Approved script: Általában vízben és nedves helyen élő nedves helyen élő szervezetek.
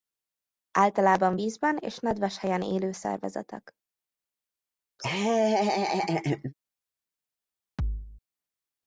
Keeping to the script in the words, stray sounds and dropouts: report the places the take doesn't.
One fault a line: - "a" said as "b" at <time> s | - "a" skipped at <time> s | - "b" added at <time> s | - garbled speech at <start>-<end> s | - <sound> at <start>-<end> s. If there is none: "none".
- "nedves helyen élő" skipped at 2.9 s
- laugh at 5.0-6.5 s
- thud at 7.8-8.2 s